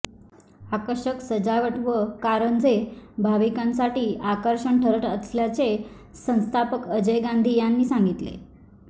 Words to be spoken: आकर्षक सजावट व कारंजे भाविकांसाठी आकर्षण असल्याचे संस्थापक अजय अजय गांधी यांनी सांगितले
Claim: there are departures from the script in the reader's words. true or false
true